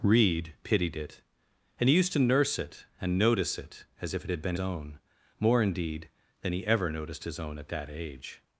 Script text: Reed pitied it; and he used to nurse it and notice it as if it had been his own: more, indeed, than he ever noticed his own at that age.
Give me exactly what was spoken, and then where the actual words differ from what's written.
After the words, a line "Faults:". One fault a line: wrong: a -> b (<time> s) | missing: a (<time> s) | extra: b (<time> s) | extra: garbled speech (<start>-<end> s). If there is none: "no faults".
Reed pitied it; and he used to nurse it and notice it as if it had been own: more, indeed, than he ever noticed his own at that age.
Faults:
missing: his (4.5 s)